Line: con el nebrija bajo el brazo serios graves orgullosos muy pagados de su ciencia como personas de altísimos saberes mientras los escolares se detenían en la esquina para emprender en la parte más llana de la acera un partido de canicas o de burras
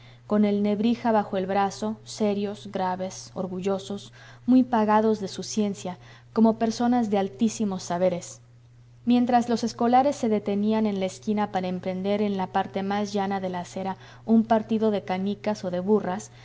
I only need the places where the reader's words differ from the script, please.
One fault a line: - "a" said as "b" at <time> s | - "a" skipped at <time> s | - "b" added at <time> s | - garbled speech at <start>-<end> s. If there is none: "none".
none